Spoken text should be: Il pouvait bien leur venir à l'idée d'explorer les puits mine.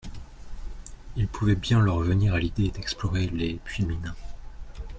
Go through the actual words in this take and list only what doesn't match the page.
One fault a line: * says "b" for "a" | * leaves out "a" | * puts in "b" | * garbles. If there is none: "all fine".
all fine